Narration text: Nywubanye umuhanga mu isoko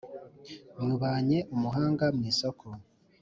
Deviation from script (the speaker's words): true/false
false